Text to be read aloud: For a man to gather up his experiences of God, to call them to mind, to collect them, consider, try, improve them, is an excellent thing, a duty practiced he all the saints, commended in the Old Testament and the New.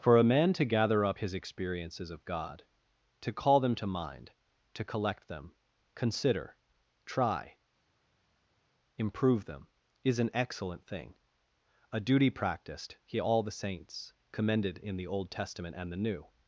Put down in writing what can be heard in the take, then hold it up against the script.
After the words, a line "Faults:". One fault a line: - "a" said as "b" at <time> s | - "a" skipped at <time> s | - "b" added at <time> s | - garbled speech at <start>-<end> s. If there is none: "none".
For a man to gather up his experiences of God, to call them to mind, to collect them, consider, try, improve them, is an excellent thing, a duty practiced he all the saints, commended in the Old Testament and the New.
Faults:
none